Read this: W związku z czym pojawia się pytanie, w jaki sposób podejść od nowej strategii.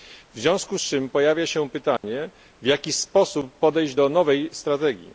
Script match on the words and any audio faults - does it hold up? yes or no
no